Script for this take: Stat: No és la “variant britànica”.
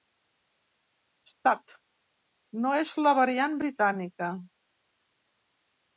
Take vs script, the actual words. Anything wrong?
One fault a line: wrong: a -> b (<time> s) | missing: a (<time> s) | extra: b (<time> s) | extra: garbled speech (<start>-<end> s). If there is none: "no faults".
no faults